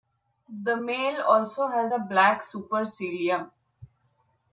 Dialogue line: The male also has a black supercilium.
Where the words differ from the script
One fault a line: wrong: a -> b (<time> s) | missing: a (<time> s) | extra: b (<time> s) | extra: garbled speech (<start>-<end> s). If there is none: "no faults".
no faults